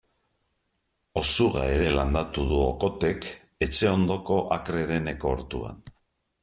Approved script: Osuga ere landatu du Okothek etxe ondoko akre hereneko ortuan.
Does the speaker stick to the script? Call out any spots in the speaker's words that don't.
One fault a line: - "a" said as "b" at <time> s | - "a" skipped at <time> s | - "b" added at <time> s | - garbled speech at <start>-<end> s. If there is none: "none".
none